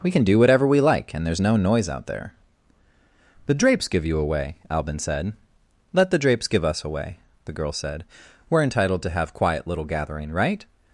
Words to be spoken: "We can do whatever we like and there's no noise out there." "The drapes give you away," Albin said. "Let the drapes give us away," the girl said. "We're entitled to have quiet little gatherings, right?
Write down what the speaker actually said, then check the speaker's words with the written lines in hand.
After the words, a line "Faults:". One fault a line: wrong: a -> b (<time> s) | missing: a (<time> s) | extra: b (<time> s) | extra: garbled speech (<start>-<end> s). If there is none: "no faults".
"We can do whatever we like and there's no noise out there." "The drapes give you away," Albin said. "Let the drapes give us away," the girl said. "We're entitled to have quiet little gathering, right?
Faults:
wrong: gatherings -> gathering (9.8 s)